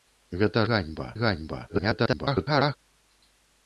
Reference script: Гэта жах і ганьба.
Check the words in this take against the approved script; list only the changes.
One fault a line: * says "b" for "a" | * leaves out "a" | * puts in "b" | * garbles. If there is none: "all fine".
* says "ганьба" for "жах"
* garbles